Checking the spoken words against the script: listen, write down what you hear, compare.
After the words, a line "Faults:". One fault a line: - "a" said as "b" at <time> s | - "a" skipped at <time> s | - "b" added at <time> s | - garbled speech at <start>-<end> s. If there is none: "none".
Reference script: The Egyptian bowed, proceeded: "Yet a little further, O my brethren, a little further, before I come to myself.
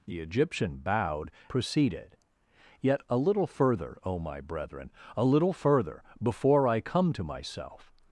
The Egyptian bowed, proceeded: "Yet a little further, O my brethren, a little further, before I come to myself.
Faults:
none